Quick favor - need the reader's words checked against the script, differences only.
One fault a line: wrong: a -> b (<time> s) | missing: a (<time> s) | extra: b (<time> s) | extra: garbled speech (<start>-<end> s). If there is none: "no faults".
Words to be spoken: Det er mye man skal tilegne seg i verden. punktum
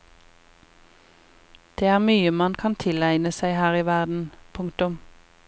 wrong: skal -> kan (2.6 s)
extra: her (3.6 s)